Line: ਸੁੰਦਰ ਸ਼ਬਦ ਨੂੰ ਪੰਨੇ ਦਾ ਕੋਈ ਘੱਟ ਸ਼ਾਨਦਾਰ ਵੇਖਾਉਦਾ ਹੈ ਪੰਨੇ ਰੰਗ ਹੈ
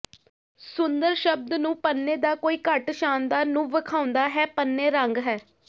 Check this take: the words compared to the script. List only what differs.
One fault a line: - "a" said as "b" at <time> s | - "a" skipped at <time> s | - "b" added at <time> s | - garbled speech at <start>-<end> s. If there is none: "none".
- "ਨੂੰ" added at 3.5 s